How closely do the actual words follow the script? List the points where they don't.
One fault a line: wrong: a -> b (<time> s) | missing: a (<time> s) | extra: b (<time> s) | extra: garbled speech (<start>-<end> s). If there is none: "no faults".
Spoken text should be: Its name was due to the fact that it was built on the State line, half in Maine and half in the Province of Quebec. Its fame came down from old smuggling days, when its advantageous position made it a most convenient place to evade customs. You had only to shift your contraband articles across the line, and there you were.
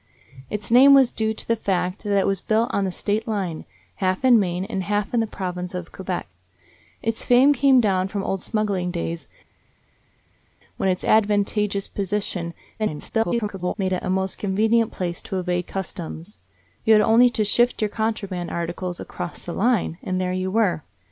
extra: garbled speech (12.8-13.7 s)